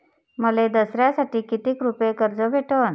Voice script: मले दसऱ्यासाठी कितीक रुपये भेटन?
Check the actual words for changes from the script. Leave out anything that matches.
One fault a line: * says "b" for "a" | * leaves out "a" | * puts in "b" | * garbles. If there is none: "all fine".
* puts in "कर्ज"